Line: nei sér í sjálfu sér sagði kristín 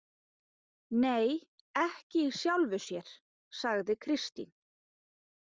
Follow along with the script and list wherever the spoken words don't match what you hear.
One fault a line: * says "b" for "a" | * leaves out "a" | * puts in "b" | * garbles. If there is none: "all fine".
* says "ekki" for "sér"